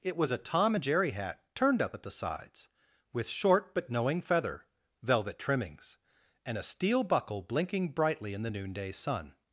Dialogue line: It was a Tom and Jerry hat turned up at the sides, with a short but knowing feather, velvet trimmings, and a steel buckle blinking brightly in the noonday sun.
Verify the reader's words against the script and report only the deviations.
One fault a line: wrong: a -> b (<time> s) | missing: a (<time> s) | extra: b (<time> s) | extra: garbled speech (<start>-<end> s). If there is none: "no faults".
missing: a (3.3 s)